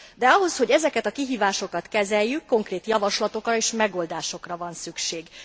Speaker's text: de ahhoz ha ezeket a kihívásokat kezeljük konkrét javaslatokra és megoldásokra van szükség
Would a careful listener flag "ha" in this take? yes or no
yes